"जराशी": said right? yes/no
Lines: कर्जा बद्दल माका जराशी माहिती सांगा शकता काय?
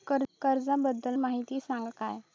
no